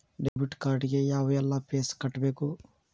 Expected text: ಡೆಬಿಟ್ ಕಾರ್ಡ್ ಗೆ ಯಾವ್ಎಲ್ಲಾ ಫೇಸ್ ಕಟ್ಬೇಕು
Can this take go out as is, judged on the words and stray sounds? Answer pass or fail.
fail